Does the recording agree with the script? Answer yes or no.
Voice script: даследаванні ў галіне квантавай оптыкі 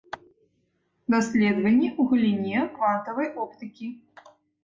yes